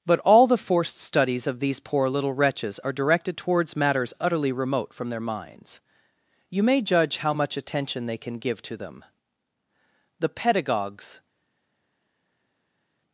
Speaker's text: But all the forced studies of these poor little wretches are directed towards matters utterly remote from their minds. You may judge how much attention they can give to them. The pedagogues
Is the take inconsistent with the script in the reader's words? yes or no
no